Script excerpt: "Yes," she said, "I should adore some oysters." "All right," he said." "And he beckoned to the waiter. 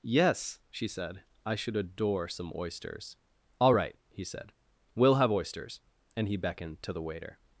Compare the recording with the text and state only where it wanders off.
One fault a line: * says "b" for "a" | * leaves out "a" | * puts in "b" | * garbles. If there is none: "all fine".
* puts in "We'll have oysters"